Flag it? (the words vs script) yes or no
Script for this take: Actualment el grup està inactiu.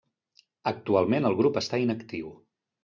no